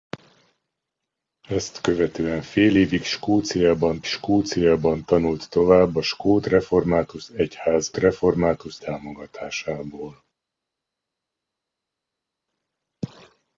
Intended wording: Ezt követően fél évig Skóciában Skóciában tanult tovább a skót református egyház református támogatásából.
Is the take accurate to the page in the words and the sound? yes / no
yes